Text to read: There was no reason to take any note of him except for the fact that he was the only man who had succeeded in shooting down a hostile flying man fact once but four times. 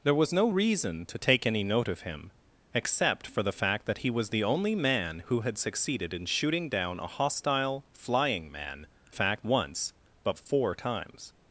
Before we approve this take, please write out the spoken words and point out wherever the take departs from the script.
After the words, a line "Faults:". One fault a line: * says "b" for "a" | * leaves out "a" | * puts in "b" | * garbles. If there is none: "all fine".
There was no reason to take any note of him except for the fact that he was the only man who had succeeded in shooting down a hostile flying man fact once but four times.
Faults:
all fine